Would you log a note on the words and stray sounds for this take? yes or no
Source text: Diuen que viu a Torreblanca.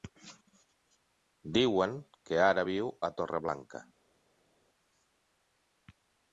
yes